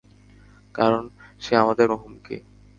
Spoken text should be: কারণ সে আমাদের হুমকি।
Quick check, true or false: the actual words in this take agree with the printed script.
true